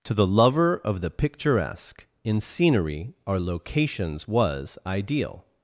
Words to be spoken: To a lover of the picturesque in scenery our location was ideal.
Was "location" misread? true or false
true